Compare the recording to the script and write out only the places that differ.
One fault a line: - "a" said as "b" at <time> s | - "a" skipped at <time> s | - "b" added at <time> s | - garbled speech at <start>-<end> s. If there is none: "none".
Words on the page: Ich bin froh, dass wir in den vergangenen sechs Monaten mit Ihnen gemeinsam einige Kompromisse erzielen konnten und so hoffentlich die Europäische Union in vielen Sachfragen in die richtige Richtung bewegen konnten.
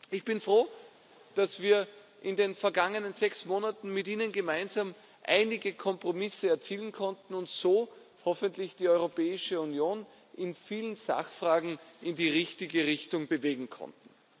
none